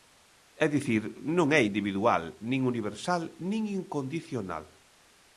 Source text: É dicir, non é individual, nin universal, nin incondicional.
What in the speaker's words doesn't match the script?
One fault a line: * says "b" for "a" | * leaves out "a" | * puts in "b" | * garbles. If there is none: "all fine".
all fine